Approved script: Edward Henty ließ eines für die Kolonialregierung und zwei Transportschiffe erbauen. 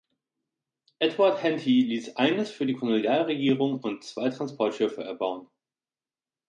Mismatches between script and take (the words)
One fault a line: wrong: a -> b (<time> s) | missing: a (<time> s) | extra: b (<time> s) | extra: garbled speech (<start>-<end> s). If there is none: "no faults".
no faults